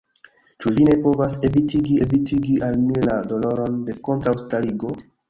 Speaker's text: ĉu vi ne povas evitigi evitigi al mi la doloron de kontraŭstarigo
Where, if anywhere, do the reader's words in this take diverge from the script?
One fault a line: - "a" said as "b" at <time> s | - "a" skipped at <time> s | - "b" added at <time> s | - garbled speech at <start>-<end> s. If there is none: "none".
none